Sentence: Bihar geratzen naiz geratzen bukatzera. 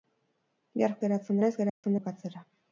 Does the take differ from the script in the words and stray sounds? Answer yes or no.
yes